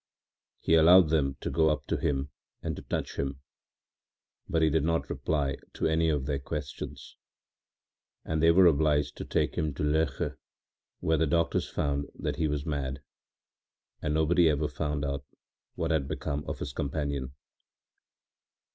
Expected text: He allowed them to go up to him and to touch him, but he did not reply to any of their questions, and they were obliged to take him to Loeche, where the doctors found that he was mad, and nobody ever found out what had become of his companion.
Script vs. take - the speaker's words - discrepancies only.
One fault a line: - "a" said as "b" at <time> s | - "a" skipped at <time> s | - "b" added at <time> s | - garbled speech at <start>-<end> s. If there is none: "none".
none